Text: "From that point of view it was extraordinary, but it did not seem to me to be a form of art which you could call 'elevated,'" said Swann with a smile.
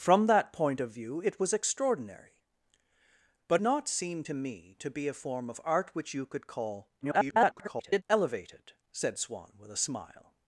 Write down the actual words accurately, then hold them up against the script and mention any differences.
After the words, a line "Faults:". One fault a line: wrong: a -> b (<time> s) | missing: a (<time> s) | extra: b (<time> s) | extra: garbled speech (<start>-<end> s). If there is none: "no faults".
"From that point of view it was extraordinary, but not seem to me to be a form of art which you could call [garbled] 'elevated,'" said Swann with a smile.
Faults:
missing: it did (3.6 s)
extra: garbled speech (7.0-8.0 s)